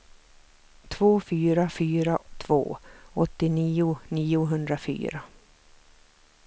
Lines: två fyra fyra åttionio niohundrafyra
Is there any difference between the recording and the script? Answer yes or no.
yes